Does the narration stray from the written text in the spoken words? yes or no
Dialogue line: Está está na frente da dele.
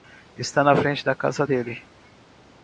yes